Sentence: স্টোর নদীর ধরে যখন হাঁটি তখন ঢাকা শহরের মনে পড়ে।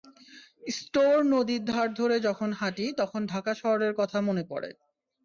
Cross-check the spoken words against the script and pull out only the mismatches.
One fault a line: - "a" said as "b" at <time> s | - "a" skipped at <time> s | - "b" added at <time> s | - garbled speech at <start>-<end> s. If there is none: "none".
- "ধার" added at 1.6 s
- "কথা" added at 3.9 s